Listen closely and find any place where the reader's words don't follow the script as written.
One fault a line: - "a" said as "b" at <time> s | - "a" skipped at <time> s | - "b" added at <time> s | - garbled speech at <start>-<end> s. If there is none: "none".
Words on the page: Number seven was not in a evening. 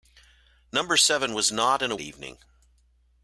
none